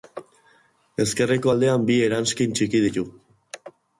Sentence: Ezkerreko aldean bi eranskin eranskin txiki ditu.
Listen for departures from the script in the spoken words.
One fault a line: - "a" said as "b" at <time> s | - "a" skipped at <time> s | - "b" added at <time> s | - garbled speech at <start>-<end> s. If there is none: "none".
- "eranskin" skipped at 2.6 s